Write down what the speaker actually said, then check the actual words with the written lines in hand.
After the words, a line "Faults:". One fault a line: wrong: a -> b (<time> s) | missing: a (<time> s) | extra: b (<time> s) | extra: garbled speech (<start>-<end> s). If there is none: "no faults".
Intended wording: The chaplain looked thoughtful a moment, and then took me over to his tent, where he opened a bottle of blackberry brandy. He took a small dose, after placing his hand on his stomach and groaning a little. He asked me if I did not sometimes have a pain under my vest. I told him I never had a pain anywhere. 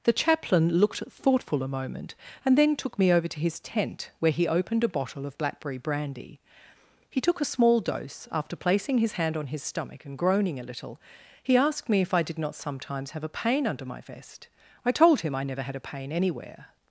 The chaplain looked thoughtful a moment, and then took me over to his tent, where he opened a bottle of blackberry brandy. He took a small dose, after placing his hand on his stomach and groaning a little. He asked me if I did not sometimes have a pain under my vest. I told him I never had a pain anywhere.
Faults:
no faults